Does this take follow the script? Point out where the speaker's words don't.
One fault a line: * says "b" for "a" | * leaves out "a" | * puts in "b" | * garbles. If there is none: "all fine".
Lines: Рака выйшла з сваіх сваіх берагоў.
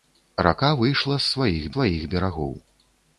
all fine